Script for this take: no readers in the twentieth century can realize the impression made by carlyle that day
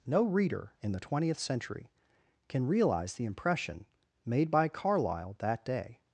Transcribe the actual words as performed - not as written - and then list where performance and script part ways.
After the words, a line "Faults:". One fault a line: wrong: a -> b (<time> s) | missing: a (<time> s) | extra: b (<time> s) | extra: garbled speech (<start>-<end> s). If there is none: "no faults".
no reader in the twentieth century can realize the impression made by carlyle that day
Faults:
wrong: readers -> reader (0.2 s)